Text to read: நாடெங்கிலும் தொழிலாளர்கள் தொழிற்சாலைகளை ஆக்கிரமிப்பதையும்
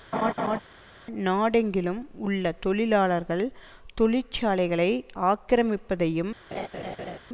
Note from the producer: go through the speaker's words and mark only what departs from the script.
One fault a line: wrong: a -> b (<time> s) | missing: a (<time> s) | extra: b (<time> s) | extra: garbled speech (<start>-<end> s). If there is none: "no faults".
extra: உள்ள (2.2 s)